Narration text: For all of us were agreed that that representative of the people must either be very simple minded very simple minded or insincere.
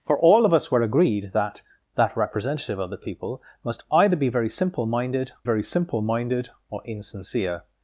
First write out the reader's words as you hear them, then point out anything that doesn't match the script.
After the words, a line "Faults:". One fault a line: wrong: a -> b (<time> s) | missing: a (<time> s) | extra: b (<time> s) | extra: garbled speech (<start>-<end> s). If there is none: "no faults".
For all of us were agreed that that representative of the people must either be very simple minded very simple minded or insincere.
Faults:
no faults